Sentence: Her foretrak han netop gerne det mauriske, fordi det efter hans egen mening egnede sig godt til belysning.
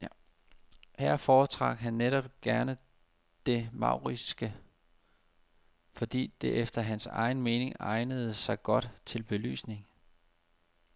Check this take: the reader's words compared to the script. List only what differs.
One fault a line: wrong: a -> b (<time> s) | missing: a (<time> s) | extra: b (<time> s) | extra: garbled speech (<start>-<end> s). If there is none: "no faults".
no faults